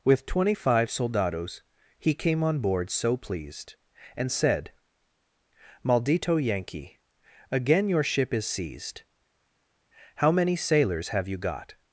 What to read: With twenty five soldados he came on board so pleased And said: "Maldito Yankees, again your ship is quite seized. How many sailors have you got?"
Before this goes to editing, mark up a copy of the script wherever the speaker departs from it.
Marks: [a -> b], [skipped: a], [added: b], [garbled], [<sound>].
With twenty five soldados he came on board so pleased And said: "Maldito [Yankees, -> Yankee] again your ship is [skipped: quite] seized. How many sailors have you got?"